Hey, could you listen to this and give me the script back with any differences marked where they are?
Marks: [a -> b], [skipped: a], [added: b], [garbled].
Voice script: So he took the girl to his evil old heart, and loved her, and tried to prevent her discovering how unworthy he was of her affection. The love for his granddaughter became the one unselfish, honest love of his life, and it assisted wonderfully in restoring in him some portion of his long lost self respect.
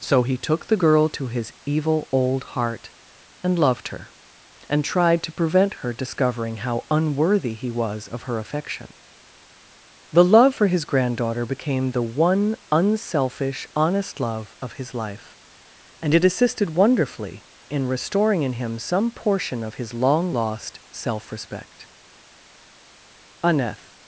So he took the girl to his evil old heart, and loved her, and tried to prevent her discovering how unworthy he was of her affection. The love for his granddaughter became the one unselfish, honest love of his life, and it assisted wonderfully in restoring in him some portion of his long lost self respect. [added: Aneth]